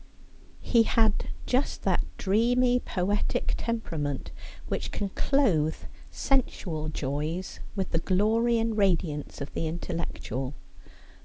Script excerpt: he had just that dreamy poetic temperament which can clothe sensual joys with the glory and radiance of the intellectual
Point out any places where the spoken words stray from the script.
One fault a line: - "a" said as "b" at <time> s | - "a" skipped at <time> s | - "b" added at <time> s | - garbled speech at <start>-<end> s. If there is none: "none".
none